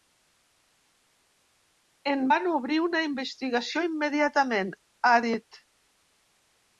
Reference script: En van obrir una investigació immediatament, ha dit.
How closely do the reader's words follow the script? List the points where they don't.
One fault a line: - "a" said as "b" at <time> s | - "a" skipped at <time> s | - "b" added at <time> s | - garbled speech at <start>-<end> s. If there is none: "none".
none